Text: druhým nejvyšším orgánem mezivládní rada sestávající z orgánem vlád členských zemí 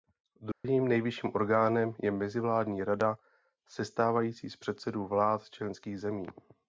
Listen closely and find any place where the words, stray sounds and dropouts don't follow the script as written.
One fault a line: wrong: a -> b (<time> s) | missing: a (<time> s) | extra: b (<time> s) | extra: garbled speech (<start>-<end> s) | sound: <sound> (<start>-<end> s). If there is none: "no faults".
sound: dropout (0.5-0.6 s)
extra: je (2.0 s)
wrong: orgánem -> předsedů (4.6 s)